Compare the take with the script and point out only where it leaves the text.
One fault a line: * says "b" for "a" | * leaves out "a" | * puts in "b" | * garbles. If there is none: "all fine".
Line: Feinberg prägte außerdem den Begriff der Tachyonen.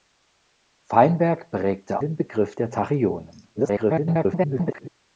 * leaves out "außerdem"
* garbles